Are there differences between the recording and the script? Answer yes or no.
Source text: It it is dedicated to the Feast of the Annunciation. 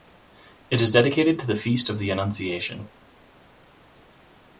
yes